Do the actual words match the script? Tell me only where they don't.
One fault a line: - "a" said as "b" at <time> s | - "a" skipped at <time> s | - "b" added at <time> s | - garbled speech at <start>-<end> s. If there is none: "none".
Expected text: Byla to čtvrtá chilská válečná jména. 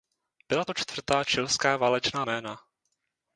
none